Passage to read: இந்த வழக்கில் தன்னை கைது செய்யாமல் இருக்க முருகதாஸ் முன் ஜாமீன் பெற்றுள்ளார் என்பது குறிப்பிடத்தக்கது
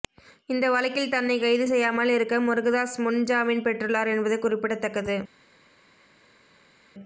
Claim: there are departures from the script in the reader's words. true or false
false